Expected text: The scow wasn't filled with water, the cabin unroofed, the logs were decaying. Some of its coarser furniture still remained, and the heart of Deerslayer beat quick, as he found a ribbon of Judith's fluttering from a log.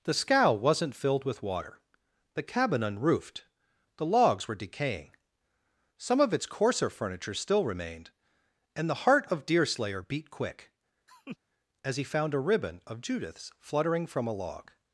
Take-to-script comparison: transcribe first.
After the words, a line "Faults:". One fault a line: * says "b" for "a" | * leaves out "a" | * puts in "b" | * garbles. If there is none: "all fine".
The scow wasn't filled with water, the cabin unroofed, the logs were decaying. Some of its coarser furniture still remained, and the heart of Deerslayer beat quick, as he found a ribbon of Judith's fluttering from a log.
Faults:
all fine